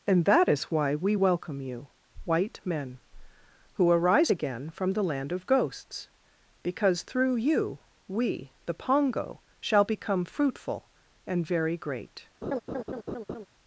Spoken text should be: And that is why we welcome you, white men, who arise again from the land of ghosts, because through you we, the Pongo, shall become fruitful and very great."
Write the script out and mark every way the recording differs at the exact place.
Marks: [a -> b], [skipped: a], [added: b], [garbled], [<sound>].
And that is why we welcome you, white men, who arise again from the land of ghosts, because through you we, the Pongo, shall become fruitful and very great." [laugh]